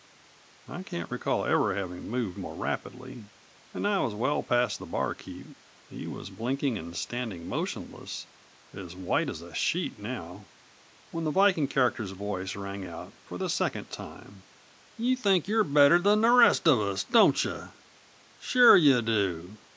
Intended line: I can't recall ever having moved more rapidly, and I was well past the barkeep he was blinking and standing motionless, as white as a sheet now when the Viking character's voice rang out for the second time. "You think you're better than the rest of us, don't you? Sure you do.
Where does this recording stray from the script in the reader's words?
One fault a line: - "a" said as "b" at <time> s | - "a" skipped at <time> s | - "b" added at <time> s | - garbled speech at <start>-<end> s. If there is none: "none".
none